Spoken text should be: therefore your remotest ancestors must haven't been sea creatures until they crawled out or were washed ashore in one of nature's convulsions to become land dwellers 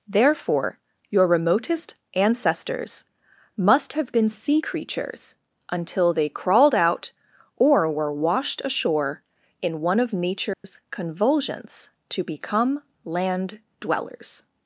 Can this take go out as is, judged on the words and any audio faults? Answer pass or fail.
fail